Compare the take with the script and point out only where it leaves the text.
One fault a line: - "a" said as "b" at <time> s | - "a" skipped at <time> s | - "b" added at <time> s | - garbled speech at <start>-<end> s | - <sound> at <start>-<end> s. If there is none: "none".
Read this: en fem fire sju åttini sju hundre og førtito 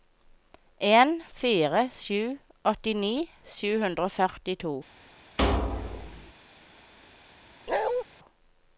- "fem" skipped at 1.1 s
- thud at 5.4-6.3 s
- bark at 7.7-8.0 s